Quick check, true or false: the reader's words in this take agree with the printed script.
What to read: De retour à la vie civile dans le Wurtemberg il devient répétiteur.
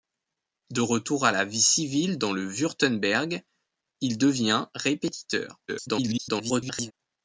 false